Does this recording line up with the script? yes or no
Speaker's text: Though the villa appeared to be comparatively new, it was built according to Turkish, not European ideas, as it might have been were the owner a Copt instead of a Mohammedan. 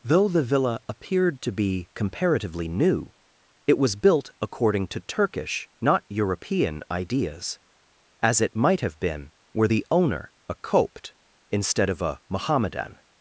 yes